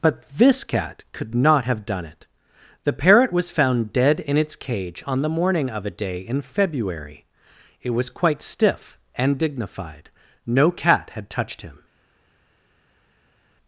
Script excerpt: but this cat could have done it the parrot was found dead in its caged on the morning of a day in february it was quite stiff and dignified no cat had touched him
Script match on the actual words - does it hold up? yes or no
no